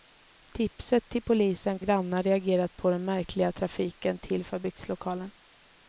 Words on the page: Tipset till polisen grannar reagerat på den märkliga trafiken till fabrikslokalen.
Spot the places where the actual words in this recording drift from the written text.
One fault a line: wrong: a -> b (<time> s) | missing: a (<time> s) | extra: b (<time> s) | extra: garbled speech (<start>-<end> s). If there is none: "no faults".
no faults